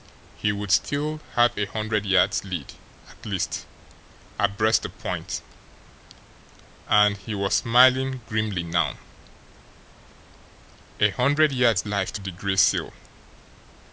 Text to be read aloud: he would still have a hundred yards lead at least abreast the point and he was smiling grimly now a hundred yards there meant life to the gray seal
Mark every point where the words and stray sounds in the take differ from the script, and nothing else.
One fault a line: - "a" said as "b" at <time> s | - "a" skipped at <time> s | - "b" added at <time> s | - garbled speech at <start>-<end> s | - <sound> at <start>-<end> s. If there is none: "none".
- "there meant" skipped at 11.8 s